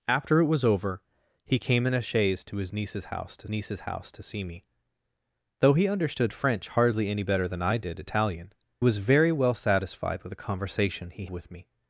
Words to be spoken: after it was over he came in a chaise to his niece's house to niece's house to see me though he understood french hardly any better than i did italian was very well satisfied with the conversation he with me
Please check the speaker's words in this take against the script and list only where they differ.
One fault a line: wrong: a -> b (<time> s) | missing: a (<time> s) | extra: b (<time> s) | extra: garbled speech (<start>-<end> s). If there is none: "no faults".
no faults